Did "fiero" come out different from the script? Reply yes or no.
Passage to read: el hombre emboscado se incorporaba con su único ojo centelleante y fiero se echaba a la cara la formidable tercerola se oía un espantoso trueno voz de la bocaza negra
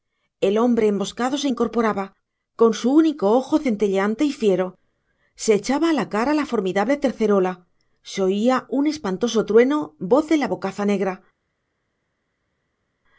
no